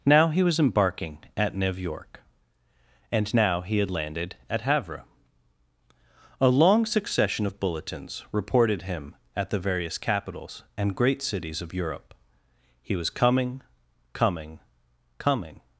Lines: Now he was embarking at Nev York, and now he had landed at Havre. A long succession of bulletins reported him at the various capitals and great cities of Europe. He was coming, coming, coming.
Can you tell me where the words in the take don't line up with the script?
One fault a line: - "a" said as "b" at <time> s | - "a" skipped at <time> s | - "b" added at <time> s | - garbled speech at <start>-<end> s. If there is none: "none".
none